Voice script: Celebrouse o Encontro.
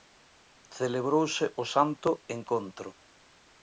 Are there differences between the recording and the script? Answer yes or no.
yes